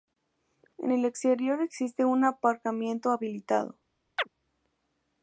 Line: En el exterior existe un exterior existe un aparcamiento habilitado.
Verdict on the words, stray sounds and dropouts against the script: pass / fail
fail